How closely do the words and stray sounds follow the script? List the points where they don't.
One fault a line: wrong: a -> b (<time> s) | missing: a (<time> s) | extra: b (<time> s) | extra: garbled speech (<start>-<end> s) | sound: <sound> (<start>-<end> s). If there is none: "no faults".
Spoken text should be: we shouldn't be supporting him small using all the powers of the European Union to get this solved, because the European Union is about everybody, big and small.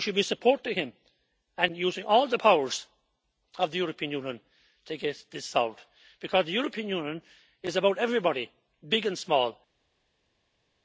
wrong: shouldn't -> should (0.0 s)
wrong: small -> and (1.6 s)